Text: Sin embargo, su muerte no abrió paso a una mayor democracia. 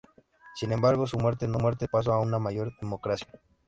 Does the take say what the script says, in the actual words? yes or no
no